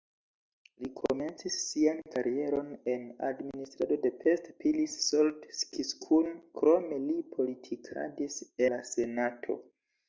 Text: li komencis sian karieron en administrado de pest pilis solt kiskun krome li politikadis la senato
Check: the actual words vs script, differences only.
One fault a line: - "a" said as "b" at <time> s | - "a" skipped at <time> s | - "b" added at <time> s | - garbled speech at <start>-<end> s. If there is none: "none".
none